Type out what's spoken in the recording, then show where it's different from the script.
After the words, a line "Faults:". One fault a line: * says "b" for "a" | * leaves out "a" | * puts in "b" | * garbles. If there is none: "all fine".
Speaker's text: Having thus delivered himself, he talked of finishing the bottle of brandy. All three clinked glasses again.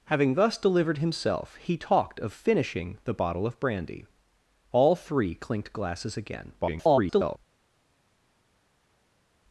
Having thus delivered himself, he talked of finishing the bottle of brandy. All three clinked glasses again. [garbled]
Faults:
* garbles